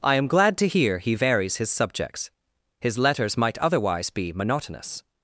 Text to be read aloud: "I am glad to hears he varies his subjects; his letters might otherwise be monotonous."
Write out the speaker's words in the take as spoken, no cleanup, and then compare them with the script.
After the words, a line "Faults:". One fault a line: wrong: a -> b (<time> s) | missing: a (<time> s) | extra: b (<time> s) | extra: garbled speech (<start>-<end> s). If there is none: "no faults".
"I am glad to hear he varies his subjects; his letters might otherwise be monotonous."
Faults:
wrong: hears -> hear (0.6 s)